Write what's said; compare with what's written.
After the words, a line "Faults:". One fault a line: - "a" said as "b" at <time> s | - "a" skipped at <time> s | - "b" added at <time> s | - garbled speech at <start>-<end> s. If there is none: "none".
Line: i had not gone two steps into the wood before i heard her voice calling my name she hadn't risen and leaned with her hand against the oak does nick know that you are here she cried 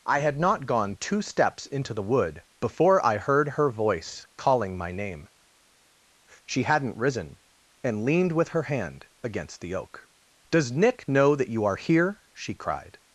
i had not gone two steps into the wood before i heard her voice calling my name she hadn't risen and leaned with her hand against the oak does nick know that you are here she cried
Faults:
none